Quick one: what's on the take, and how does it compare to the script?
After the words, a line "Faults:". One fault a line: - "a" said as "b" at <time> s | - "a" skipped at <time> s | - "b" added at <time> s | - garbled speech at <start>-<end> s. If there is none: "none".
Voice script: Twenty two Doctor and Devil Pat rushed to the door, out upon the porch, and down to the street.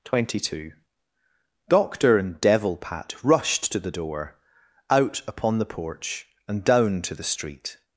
Twenty two Doctor and Devil Pat rushed to the door, out upon the porch, and down to the street.
Faults:
none